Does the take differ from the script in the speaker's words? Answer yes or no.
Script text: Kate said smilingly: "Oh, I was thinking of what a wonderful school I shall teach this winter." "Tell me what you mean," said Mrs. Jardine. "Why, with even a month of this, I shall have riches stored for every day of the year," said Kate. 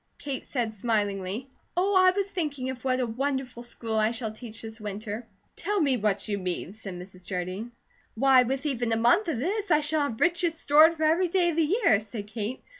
no